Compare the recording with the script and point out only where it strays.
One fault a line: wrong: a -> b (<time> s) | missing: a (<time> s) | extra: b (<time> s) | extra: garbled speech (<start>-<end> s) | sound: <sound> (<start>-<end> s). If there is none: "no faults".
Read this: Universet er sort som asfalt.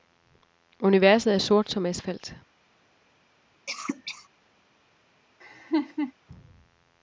sound: cough (3.7-4.3 s)
sound: laugh (5.4-6.1 s)